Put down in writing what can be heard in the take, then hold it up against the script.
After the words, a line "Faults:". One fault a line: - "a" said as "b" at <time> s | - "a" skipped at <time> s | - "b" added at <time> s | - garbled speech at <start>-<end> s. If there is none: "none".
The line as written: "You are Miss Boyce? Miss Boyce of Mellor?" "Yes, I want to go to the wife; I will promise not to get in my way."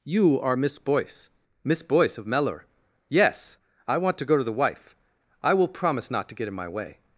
"You are Miss Boyce? Miss Boyce of Mellor?" "Yes, I want to go to the wife; I will promise not to get in my way."
Faults:
none